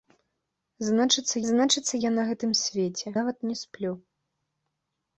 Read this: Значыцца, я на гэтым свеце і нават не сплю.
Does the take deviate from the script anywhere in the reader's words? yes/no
yes